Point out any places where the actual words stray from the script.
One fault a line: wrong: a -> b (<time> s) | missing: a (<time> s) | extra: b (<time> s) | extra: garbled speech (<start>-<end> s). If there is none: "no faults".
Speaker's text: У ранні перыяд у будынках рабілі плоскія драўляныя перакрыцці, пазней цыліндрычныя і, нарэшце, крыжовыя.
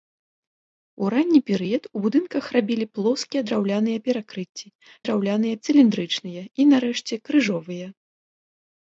wrong: пазней -> драўляныя (5.1 s)